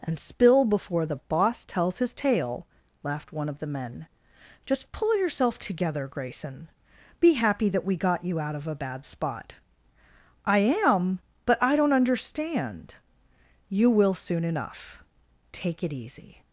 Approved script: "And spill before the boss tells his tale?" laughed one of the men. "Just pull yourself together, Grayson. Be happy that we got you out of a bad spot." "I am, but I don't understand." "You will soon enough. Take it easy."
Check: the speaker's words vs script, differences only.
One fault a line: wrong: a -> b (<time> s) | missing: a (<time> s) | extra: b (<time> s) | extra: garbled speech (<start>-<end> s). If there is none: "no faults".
no faults